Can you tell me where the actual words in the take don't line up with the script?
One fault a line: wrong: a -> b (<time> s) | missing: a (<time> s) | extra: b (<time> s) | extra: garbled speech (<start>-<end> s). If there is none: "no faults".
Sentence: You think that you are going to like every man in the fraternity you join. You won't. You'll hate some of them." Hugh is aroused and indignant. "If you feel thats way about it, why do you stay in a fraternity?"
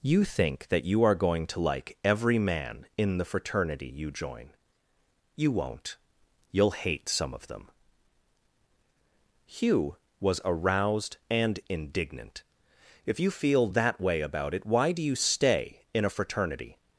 wrong: is -> was (10.2 s)
wrong: thats -> that (13.7 s)